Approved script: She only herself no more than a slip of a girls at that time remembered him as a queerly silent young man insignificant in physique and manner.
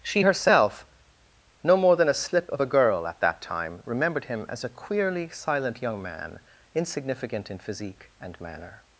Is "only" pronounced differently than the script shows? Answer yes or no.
yes